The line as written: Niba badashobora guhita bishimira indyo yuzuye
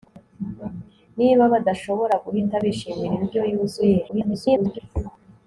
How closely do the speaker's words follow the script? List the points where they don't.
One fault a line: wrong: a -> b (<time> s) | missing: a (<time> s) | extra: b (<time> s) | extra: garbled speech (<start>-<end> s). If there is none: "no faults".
extra: garbled speech (4.1-4.8 s)